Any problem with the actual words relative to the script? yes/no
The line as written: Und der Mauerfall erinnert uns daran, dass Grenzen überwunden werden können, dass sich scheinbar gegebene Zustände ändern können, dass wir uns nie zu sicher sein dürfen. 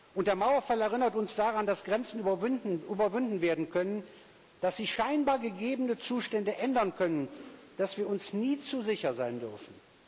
no